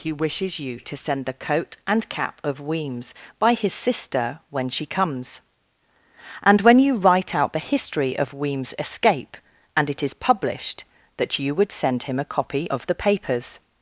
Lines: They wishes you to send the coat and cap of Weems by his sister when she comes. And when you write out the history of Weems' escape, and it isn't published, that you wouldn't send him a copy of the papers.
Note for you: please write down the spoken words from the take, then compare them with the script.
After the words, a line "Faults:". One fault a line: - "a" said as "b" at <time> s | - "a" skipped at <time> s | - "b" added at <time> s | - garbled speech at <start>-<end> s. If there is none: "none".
He wishes you to send the coat and cap of Weems by his sister when she comes. And when you write out the history of Weems' escape, and it is published, that you would send him a copy of the papers.
Faults:
- "They" said as "He" at 0.0 s
- "isn't" said as "is" at 10.0 s
- "wouldn't" said as "would" at 11.5 s